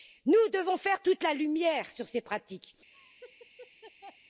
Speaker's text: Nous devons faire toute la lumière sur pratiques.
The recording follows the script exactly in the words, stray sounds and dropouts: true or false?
false